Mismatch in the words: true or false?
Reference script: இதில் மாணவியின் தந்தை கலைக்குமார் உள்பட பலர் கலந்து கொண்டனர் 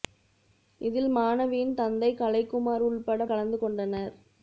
true